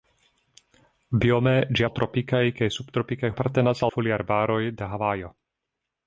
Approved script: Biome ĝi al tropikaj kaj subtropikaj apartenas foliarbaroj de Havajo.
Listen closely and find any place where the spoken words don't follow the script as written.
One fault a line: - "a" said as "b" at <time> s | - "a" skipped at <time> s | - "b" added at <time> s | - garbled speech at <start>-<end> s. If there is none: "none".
none